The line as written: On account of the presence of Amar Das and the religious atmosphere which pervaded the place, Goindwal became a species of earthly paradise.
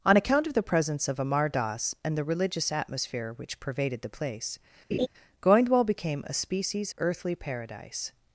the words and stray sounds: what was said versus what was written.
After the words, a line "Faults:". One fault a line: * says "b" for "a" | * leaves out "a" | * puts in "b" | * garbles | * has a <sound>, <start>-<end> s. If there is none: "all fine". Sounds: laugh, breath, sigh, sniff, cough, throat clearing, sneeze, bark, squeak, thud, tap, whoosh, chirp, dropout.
On account of the presence of Amar Das and the religious atmosphere which pervaded the place, Goindwal became a species earthly paradise.
Faults:
* has a laugh, 4.9-5.1 s
* leaves out "of"